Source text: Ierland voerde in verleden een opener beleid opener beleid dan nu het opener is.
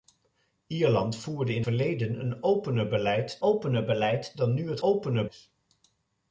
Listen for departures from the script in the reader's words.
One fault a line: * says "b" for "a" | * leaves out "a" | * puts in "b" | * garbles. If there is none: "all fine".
all fine